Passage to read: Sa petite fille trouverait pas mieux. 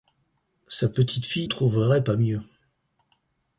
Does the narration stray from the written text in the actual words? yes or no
no